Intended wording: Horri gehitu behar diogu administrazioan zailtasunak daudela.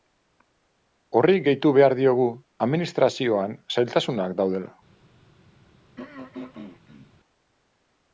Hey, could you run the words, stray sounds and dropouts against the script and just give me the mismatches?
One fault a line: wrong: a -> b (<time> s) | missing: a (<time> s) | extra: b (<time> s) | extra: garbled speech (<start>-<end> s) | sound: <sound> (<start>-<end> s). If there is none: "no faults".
sound: throat clearing (6.0-7.1 s)